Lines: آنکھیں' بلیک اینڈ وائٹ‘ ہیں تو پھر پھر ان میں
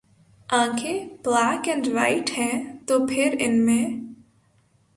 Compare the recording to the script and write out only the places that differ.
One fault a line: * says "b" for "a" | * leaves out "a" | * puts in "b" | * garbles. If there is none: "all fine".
* leaves out "پھر"